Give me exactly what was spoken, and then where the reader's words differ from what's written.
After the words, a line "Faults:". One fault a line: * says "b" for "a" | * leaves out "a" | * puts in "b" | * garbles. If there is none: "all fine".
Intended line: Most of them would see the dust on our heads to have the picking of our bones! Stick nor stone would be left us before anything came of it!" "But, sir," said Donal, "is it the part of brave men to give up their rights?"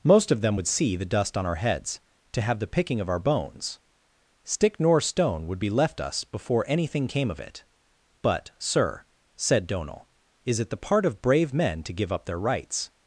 Most of them would see the dust on our heads to have the picking of our bones! Stick nor stone would be left us before anything came of it!" "But, sir," said Donal, "is it the part of brave men to give up their rights?"
Faults:
all fine